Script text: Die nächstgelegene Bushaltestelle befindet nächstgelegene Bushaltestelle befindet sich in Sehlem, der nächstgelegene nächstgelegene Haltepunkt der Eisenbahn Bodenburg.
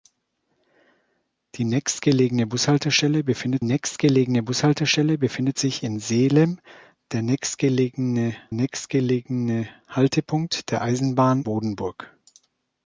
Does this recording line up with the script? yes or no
yes